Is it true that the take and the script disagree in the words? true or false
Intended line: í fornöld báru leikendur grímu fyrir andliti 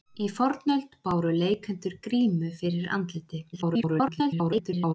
true